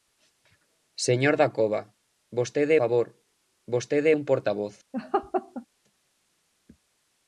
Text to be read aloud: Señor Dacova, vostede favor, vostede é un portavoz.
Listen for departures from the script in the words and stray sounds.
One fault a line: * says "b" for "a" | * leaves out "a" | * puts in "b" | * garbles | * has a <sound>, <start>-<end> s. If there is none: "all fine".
* has a laugh, 4.9-5.7 s